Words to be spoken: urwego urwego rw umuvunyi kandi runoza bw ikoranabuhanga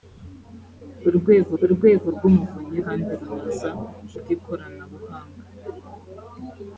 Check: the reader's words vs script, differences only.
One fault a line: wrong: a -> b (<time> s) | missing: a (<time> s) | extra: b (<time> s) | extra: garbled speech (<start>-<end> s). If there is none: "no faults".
no faults